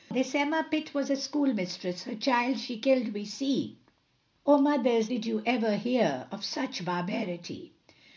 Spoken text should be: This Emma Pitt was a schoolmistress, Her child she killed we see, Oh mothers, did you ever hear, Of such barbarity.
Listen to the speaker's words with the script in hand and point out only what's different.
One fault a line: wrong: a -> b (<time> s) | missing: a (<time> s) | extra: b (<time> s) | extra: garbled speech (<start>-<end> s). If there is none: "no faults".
no faults